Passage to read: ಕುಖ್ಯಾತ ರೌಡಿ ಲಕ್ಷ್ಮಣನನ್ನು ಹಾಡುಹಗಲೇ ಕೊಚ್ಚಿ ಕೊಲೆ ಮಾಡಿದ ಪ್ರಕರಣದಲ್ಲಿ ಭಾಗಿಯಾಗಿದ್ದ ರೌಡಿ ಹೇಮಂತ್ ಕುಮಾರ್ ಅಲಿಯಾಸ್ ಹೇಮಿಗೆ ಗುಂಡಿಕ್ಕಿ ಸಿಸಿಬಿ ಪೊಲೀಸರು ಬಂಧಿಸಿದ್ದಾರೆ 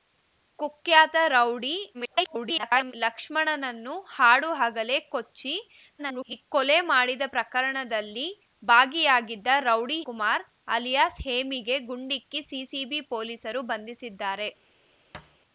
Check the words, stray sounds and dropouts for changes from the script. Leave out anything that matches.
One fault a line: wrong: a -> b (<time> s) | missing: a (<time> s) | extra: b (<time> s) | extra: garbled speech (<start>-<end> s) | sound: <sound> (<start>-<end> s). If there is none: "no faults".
extra: garbled speech (1.9-2.9 s)
extra: garbled speech (6.0-6.5 s)
missing: ಹೇಮಂತ್ (10.0 s)
sound: thud (15.1-15.4 s)